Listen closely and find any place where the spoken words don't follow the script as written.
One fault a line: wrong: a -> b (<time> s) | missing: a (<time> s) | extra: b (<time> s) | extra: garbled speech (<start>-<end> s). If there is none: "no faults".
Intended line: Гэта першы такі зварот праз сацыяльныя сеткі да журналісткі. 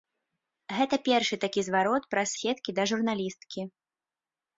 missing: сацыяльныя (2.3 s)